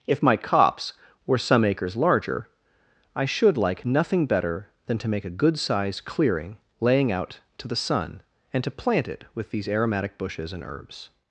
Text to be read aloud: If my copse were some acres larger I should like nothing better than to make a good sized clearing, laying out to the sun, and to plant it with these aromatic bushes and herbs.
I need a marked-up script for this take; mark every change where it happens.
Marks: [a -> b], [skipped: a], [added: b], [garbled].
If my copse were some acres larger I should like nothing better than to make a good sized clearing, laying out to the sun, and to plant it with these aromatic bushes and herbs.